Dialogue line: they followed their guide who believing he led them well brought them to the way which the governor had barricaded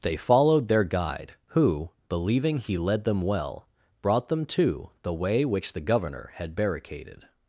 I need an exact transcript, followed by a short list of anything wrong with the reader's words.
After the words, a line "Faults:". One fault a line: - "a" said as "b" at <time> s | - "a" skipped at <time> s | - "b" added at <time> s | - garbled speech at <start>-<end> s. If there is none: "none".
they followed their guide who believing he led them well brought them to the way which the governor had barricaded
Faults:
none